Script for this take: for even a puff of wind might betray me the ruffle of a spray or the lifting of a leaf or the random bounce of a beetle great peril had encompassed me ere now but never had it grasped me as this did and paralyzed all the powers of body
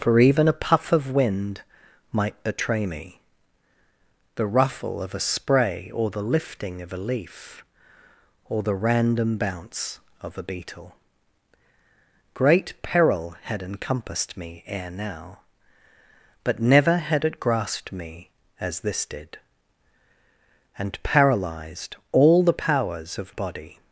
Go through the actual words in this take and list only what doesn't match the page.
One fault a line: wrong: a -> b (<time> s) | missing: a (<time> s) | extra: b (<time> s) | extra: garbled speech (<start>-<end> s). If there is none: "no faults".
no faults